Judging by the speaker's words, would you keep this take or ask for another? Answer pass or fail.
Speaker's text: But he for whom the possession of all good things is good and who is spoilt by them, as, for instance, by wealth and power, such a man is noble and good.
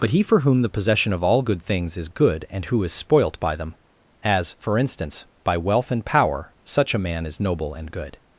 pass